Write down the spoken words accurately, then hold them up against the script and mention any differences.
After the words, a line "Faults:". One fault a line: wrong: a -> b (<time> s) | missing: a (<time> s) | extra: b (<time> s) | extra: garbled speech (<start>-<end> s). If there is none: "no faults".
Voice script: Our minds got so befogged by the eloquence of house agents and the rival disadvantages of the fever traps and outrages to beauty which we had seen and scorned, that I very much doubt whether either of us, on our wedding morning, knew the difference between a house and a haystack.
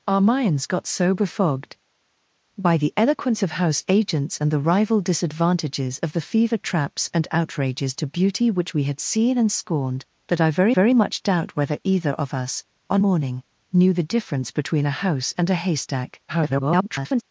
Our minds got so befogged by the eloquence of house agents and the rival disadvantages of the fever traps and outrages to beauty which we had seen and scorned, that I very very much doubt whether either of us, on morning, knew the difference between a house and a haystack. [garbled]
Faults:
extra: very (10.7 s)
missing: our wedding (13.0 s)
extra: garbled speech (16.3-17.2 s)